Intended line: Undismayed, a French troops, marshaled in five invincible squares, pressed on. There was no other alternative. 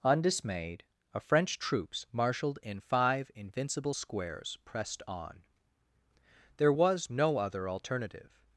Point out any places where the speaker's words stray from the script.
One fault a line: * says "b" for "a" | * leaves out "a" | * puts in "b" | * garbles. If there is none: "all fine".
all fine